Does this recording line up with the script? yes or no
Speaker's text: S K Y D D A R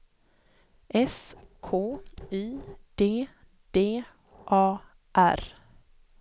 yes